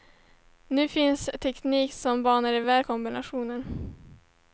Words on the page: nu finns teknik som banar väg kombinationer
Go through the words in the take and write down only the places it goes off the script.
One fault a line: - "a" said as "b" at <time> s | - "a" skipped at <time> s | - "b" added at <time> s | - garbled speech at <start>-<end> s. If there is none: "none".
none